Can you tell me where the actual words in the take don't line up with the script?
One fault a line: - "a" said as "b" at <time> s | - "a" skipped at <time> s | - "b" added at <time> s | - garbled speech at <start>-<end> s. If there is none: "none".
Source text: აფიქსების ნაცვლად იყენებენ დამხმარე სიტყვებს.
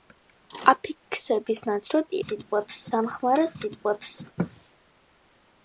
- "იყენებენ" said as "სიტყვებს" at 2.3 s